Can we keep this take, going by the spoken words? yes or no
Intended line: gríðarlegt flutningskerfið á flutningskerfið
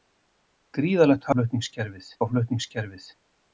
yes